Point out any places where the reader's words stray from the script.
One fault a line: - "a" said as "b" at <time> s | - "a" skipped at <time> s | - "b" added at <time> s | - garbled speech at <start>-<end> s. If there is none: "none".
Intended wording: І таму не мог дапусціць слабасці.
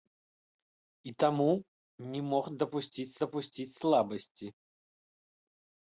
- "дапусціць" added at 3.2 s